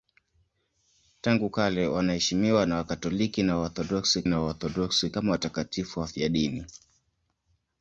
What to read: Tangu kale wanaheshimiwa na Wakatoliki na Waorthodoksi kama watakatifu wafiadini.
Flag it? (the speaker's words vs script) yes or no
yes